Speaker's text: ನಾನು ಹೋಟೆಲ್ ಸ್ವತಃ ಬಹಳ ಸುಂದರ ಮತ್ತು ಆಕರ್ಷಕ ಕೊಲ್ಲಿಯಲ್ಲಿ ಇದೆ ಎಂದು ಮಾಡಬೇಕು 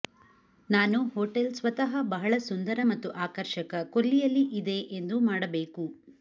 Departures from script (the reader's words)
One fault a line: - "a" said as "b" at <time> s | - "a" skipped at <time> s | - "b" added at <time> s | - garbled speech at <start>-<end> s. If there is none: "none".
none